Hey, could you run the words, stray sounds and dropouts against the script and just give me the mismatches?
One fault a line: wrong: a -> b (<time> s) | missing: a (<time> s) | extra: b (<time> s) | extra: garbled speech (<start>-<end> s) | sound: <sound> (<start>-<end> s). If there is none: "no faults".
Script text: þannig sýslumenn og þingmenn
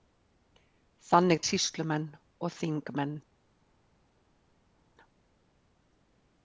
no faults